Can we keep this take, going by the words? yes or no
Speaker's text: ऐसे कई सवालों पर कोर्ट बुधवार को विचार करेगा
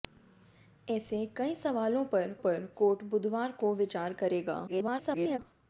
no